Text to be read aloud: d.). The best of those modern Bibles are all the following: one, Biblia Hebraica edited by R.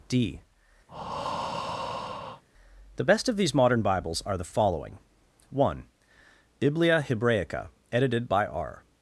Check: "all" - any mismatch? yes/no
yes